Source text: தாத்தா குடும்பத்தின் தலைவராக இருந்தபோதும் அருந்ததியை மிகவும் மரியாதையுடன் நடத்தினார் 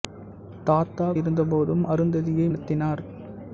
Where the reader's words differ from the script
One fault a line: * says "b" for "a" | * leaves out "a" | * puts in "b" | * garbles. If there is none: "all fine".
* leaves out "குடும்பத்தின் தலைவராக"
* leaves out "மிகவும் மரியாதையுடன்"